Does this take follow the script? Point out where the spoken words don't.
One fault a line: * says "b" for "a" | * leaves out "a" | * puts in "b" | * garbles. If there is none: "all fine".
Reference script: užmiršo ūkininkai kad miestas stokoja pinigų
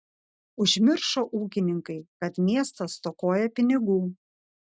all fine